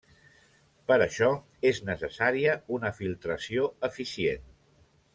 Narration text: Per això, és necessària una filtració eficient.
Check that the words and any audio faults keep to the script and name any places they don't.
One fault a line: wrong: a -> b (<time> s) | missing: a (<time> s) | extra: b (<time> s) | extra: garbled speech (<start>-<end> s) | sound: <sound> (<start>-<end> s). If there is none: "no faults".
no faults